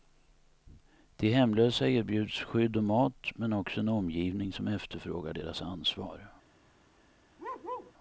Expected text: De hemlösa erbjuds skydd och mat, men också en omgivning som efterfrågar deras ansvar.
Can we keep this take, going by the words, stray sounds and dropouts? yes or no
no